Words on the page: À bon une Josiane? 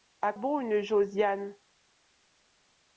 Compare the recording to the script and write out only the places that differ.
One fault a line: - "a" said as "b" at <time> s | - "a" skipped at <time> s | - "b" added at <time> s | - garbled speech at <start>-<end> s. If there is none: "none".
none